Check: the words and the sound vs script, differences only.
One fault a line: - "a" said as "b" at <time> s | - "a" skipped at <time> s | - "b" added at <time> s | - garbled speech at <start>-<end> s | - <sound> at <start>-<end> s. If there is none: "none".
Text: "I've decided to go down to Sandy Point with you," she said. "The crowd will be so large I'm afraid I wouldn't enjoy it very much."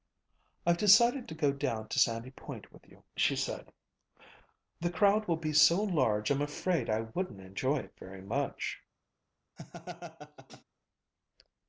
- laugh at 9.6-10.6 s